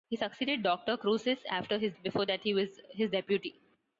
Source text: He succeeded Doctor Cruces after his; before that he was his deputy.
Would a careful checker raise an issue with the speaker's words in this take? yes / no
no